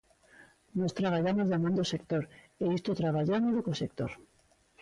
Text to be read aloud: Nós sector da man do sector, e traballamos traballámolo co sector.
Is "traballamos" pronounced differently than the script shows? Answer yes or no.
yes